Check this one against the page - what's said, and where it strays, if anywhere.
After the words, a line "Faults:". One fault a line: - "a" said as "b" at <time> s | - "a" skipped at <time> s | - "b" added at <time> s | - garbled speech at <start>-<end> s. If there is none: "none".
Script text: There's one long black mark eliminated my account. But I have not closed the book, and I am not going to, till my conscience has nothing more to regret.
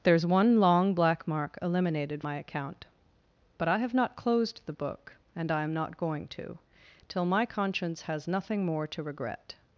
There's one long black mark eliminated my account. But I have not closed the book, and I am not going to, till my conscience has nothing more to regret.
Faults:
none